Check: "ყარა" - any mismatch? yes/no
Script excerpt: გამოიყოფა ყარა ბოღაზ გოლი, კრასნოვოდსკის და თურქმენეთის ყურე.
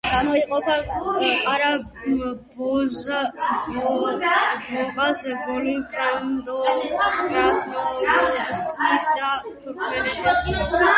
no